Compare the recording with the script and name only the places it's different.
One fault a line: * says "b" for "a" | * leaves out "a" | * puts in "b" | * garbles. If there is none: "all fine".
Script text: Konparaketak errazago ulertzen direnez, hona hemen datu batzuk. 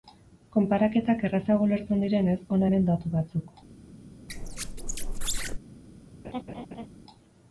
all fine